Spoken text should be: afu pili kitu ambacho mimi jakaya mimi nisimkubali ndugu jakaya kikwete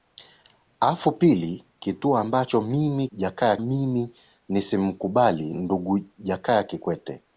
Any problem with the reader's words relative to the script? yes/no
no